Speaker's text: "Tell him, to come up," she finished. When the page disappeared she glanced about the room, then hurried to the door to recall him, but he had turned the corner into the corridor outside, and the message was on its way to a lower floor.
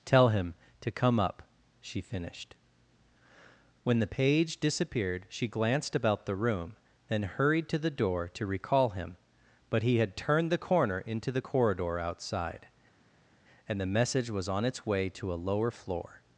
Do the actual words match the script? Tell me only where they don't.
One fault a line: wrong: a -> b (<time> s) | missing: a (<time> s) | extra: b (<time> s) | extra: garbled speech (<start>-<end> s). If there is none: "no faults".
no faults